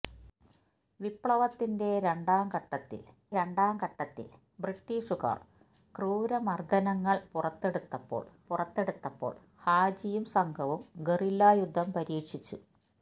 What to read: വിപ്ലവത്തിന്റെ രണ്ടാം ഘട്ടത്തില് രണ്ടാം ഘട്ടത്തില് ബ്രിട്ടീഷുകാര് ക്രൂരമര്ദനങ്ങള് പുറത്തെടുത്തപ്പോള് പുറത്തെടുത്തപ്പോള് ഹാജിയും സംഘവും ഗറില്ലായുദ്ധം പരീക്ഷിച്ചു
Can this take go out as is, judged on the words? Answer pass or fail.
pass